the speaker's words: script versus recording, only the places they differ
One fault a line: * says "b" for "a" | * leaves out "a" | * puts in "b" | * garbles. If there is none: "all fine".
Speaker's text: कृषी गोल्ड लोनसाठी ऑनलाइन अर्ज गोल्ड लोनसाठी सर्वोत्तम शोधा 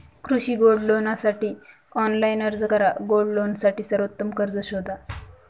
* puts in "करा"
* puts in "कर्ज"